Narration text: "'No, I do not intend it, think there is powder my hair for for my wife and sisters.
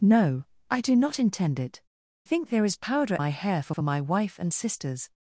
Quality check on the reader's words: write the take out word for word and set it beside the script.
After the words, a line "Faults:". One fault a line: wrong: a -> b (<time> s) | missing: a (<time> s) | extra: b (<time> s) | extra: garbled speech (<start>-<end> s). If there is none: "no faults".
"'No, I do not intend it, think there is powder my hair for for my wife and sisters.
Faults:
no faults